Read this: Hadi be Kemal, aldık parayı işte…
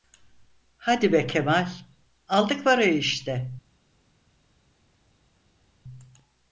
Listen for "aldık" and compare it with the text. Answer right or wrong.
right